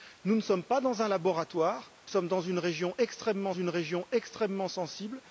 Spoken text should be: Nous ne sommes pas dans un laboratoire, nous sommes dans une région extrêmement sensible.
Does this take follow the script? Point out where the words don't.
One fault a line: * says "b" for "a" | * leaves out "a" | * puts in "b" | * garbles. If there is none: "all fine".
* leaves out "nous"
* puts in "une région extrêmement"